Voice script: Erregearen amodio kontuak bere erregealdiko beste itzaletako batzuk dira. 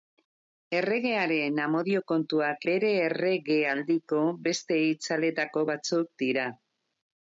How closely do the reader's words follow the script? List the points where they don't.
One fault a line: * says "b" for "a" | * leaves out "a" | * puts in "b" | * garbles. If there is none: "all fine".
all fine